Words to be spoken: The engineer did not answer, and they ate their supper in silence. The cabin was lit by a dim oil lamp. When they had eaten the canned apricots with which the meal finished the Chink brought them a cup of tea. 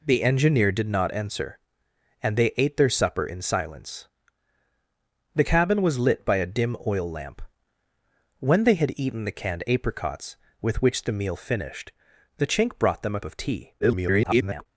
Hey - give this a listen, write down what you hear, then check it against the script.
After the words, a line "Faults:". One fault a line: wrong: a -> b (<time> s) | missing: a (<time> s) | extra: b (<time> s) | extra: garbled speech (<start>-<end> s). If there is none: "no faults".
The engineer did not answer, and they ate their supper in silence. The cabin was lit by a dim oil lamp. When they had eaten the canned apricots with which the meal finished the Chink brought them a of tea. [garbled]
Faults:
missing: cup (13.2 s)
extra: garbled speech (13.8-14.7 s)